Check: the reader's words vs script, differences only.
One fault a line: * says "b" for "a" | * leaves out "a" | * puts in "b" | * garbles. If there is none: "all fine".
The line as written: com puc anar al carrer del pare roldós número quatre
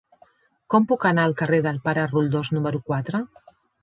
all fine